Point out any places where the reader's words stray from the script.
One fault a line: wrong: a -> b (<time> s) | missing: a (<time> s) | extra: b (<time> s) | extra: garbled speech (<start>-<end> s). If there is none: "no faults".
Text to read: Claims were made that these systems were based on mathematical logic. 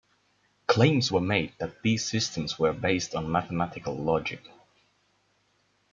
no faults